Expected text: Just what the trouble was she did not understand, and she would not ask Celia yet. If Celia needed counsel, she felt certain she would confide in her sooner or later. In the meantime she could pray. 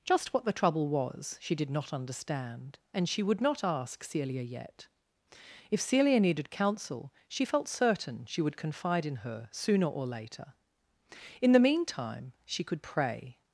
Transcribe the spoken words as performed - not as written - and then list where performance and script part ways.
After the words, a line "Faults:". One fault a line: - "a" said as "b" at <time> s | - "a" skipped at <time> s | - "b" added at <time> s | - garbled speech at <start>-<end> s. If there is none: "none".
Just what the trouble was she did not understand, and she would not ask Celia yet. If Celia needed counsel, she felt certain she would confide in her sooner or later. In the meantime she could pray.
Faults:
none